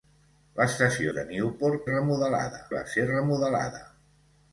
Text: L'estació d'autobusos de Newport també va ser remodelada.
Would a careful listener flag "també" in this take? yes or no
yes